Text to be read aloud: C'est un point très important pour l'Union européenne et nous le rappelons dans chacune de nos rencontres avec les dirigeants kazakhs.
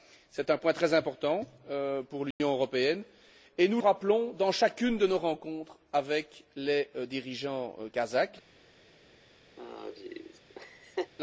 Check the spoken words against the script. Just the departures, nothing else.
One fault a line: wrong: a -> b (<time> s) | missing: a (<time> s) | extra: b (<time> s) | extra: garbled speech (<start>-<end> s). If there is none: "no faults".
missing: le (3.8 s)